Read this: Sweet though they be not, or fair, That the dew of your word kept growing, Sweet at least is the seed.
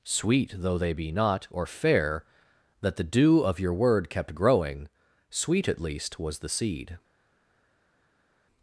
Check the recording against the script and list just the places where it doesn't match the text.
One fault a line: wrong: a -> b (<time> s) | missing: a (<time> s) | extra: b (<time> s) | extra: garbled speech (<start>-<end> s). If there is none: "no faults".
wrong: is -> was (6.2 s)